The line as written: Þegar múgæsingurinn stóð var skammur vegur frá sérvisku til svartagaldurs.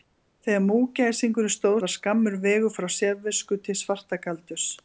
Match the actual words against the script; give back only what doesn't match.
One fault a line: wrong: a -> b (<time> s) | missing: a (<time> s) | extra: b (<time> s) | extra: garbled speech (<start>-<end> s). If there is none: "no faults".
no faults